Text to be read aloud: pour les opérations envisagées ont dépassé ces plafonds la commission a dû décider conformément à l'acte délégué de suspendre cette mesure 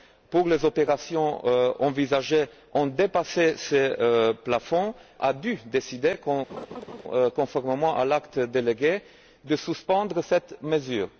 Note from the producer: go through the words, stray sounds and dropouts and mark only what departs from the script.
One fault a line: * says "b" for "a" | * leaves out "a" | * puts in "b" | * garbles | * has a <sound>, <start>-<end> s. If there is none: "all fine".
* leaves out "la commission"
* has a laugh, 6.5-7.0 s